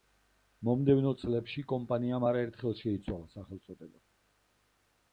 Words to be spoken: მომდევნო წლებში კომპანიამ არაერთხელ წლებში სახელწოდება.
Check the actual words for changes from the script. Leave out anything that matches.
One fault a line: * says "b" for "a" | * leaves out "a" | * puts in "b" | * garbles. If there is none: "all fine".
* says "შეიცვალა" for "წლებში"